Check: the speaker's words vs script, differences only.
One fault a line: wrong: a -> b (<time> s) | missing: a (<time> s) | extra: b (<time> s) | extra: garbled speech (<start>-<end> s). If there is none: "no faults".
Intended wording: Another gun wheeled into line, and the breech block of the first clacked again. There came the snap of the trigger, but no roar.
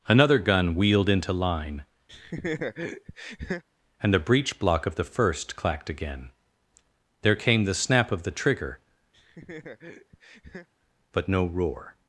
no faults